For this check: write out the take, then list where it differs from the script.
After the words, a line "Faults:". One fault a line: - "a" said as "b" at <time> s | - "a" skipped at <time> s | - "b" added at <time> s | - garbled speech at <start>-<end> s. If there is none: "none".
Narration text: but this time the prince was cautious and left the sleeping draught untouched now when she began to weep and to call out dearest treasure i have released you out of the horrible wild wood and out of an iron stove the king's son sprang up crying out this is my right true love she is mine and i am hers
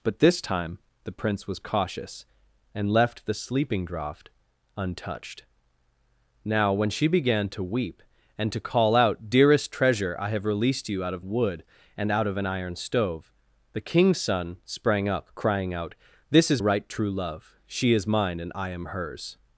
but this time the prince was cautious and left the sleeping draught untouched now when she began to weep and to call out dearest treasure i have released you out of wood and out of an iron stove the king's son sprang up crying out this is right true love she is mine and i am hers
Faults:
- "the horrible wild" skipped at 11.2 s
- "my" skipped at 16.6 s